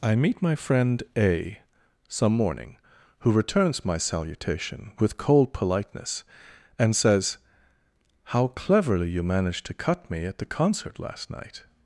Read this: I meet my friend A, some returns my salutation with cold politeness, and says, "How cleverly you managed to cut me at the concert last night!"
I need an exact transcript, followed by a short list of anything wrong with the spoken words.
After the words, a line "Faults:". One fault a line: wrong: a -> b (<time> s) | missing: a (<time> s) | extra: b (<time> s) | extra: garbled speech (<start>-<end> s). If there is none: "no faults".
I meet my friend A, some morning, who returns my salutation with cold politeness, and says, "How cleverly you managed to cut me at the concert last night!"
Faults:
extra: morning who (2.3 s)